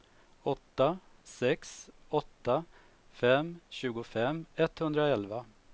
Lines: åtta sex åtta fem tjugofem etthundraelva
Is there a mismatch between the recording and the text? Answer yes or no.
no